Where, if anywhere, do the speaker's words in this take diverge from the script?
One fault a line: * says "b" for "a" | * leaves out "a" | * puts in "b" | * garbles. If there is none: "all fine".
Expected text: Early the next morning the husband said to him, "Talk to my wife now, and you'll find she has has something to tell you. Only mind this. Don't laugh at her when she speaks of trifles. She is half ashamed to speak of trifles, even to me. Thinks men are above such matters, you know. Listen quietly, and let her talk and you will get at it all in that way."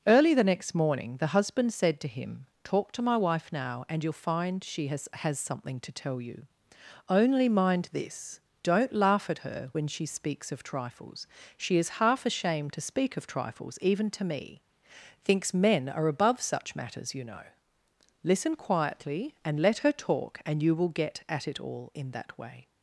all fine